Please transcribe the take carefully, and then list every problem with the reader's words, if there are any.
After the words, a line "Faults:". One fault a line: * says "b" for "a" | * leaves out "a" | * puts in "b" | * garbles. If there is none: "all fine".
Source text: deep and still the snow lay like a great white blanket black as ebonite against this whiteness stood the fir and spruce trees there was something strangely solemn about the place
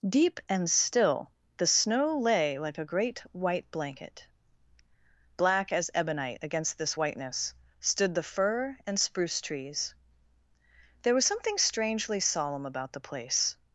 deep and still the snow lay like a great white blanket black as ebonite against this whiteness stood the fir and spruce trees there was something strangely solemn about the place
Faults:
all fine